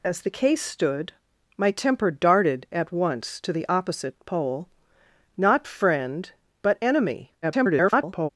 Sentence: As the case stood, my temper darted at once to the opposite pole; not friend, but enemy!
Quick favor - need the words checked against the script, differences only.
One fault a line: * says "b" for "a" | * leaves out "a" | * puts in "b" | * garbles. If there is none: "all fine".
* garbles